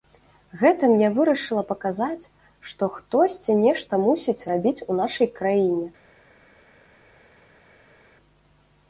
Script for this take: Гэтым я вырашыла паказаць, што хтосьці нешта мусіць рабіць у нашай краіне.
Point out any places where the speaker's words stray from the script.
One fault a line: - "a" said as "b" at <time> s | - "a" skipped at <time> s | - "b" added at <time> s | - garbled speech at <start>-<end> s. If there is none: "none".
none